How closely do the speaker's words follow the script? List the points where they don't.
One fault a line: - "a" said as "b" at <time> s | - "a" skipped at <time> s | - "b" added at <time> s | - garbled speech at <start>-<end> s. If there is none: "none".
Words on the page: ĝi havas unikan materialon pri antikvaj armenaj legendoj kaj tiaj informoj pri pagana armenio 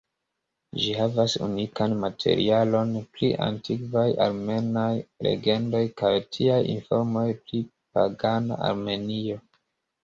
none